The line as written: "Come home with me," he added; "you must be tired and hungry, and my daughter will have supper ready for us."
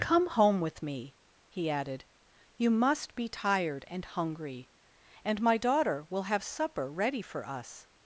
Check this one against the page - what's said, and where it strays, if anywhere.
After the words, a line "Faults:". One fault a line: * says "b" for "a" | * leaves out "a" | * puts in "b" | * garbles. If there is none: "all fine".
"Come home with me," he added; "you must be tired and hungry, and my daughter will have supper ready for us."
Faults:
all fine